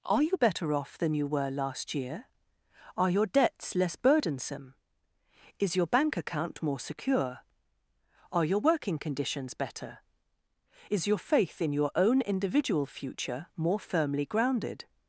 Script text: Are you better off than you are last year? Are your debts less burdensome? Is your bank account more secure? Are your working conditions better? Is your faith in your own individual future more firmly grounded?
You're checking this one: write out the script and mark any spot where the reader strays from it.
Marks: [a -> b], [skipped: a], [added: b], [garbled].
Are you better off than you [are -> were] last year? Are your debts less burdensome? Is your bank account more secure? Are your working conditions better? Is your faith in your own individual future more firmly grounded?